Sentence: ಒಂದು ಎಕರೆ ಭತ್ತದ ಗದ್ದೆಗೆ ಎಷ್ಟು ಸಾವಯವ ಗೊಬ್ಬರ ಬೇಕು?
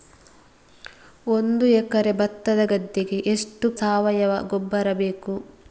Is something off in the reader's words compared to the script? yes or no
no